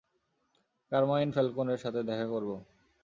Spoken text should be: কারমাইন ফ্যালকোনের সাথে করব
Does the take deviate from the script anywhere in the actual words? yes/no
yes